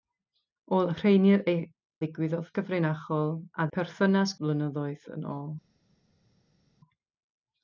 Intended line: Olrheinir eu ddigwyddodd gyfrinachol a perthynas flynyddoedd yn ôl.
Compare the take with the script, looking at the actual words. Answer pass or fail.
pass